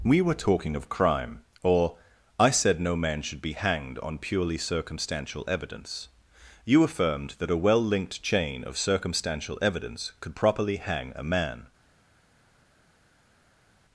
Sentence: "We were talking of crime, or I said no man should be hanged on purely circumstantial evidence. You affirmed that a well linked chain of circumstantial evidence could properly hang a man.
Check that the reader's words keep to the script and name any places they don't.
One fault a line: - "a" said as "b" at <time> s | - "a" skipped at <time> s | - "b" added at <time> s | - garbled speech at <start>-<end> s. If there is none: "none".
none